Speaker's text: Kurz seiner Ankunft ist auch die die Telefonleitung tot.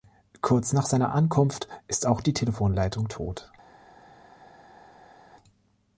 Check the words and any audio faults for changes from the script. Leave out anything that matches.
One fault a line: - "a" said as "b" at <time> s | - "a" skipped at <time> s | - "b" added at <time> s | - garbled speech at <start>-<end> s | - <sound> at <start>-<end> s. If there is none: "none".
- "nach" added at 0.7 s
- "die" skipped at 2.3 s